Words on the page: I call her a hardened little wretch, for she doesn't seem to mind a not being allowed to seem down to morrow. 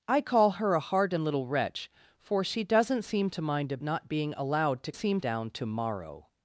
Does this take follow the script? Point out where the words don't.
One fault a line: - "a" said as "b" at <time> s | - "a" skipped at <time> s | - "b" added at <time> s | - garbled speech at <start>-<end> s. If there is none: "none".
none